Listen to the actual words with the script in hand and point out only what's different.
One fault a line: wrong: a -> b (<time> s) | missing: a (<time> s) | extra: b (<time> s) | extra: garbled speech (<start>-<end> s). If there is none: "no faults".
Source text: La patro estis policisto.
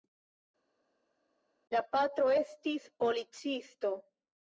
no faults